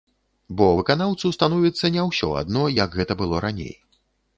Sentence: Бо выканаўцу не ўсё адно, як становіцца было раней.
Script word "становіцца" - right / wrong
wrong